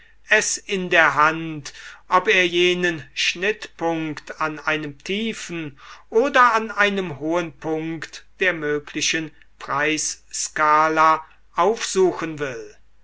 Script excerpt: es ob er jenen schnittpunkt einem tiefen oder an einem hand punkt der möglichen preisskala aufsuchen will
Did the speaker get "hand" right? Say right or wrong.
wrong